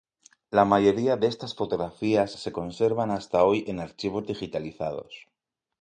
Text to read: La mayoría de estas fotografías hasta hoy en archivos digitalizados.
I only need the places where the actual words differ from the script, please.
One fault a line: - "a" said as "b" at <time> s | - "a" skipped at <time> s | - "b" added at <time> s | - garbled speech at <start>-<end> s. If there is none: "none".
- "se conservan" added at 2.3 s